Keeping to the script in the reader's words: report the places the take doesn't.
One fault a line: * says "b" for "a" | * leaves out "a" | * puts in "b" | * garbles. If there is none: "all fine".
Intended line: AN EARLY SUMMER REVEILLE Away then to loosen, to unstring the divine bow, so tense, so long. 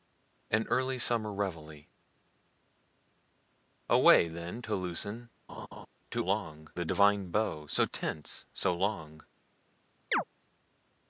* says "long" for "unstring"